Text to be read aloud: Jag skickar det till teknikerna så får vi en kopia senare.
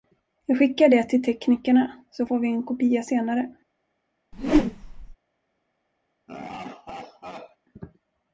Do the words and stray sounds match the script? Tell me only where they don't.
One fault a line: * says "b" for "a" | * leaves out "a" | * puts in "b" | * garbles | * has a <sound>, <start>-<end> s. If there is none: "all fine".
* has a whoosh, 4.3-5.2 s
* has a laugh, 6.3-7.6 s